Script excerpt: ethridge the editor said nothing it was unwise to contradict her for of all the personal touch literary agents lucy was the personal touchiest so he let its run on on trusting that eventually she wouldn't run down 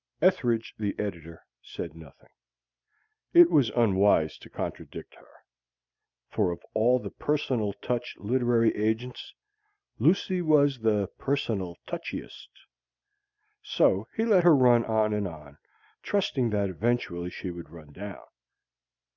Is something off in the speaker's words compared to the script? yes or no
yes